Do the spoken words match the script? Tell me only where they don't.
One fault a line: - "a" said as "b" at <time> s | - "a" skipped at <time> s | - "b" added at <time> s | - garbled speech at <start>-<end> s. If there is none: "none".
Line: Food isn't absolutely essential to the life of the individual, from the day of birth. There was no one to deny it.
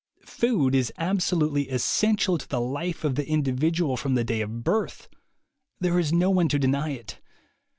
- "isn't" said as "is" at 0.7 s
- "was" said as "is" at 6.0 s